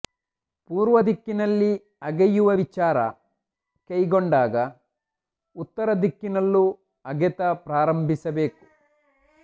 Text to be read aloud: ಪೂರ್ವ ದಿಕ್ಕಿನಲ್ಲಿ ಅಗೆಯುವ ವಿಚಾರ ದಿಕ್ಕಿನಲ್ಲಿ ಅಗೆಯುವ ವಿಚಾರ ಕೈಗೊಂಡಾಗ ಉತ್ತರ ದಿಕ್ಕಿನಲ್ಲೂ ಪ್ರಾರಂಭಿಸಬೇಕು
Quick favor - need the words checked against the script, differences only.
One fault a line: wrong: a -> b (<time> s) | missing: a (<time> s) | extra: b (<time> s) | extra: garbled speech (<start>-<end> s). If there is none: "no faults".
missing: ದಿಕ್ಕಿನಲ್ಲಿ ಅಗೆಯುವ ವಿಚಾರ (3.0 s)
extra: ಅಗೆತ (7.0 s)